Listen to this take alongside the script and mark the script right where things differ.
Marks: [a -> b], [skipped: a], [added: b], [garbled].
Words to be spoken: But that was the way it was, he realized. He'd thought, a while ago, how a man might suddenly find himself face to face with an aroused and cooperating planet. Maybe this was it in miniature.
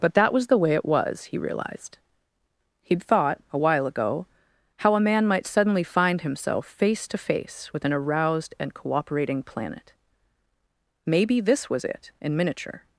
But that was the way it was, he realized. He'd thought, a while ago, how a man might suddenly find himself face to face with an aroused and cooperating planet. Maybe this was it in miniature.